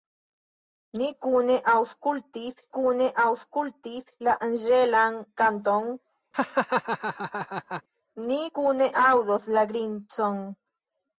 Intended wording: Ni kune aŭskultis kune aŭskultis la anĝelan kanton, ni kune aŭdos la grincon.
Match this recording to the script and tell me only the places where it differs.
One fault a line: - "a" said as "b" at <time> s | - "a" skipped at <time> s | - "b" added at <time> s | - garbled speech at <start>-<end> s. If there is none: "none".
none